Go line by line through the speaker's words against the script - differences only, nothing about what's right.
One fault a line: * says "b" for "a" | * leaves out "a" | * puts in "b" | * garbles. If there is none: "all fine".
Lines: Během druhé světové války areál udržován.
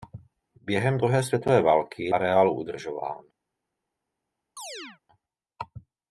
all fine